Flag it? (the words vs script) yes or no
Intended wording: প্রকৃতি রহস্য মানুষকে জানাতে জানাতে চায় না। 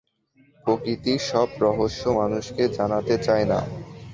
yes